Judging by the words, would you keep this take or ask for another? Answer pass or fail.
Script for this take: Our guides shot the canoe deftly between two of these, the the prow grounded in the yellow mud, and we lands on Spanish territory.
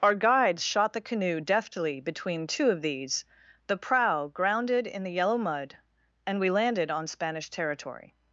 fail